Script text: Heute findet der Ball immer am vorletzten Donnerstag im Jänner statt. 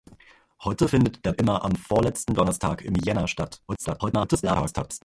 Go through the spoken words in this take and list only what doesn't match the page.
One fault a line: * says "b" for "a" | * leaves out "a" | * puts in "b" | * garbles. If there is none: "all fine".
* leaves out "Ball"
* garbles